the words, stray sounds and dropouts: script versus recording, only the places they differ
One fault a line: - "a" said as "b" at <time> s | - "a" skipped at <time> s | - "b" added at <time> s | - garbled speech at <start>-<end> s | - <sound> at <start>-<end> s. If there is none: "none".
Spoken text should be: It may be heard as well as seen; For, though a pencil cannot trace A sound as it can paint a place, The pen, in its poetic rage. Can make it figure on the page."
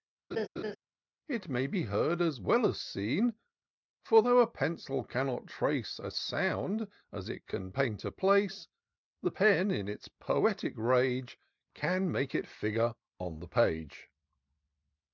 - laugh at 0.3-0.8 s